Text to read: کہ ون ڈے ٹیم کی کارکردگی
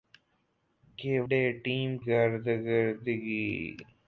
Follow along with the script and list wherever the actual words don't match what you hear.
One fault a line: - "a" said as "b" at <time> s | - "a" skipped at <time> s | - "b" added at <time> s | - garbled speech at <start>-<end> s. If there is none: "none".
- "ون" skipped at 1.1 s
- "کی" skipped at 1.9 s